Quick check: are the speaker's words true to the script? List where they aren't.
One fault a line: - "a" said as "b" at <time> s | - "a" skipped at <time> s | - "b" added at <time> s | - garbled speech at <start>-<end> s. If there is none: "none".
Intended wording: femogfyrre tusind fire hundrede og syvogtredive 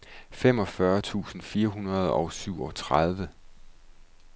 none